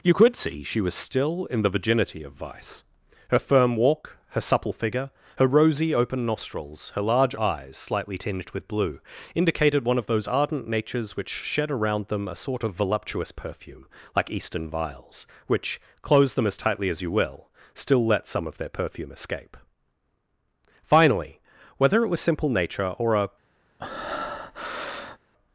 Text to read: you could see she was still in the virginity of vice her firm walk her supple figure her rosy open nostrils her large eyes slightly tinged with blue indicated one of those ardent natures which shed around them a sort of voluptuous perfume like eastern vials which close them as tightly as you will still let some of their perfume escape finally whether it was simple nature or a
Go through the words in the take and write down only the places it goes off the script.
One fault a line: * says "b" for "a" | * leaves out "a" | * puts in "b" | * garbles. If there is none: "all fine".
all fine